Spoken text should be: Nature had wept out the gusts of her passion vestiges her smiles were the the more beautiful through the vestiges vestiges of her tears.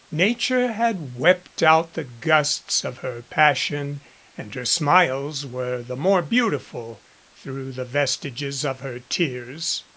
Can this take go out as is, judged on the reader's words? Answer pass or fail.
fail